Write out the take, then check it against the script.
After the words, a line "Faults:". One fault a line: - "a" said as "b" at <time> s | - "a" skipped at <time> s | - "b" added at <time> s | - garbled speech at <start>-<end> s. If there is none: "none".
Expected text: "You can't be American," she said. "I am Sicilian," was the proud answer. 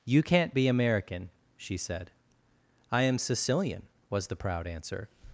"You can't be American," she said. "I am Sicilian," was the proud answer.
Faults:
none